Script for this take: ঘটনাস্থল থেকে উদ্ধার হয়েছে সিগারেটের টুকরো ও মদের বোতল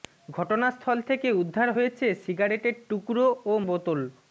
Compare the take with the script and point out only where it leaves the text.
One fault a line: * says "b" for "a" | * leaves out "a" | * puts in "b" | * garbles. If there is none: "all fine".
* leaves out "মদের"